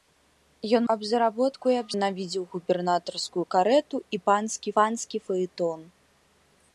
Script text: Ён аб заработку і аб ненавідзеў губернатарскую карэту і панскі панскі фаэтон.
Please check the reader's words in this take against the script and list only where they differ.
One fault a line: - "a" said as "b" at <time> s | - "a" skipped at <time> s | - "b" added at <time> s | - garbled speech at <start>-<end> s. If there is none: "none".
none